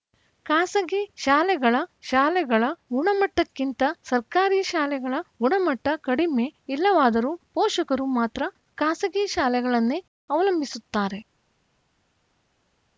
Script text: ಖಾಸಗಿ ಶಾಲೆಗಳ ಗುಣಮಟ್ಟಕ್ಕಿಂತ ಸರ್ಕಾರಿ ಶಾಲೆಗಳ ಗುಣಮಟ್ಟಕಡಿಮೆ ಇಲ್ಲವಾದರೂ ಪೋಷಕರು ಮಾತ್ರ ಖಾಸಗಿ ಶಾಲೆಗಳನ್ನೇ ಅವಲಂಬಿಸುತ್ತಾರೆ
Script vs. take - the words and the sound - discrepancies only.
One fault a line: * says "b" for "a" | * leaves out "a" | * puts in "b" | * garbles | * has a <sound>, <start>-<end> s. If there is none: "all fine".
* puts in "ಶಾಲೆಗಳ"